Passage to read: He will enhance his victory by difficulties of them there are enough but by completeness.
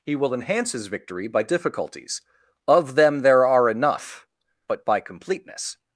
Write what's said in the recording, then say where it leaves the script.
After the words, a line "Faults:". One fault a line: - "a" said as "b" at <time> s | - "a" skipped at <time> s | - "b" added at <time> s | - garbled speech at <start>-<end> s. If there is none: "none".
He will enhance his victory by difficulties of them there are enough but by completeness.
Faults:
none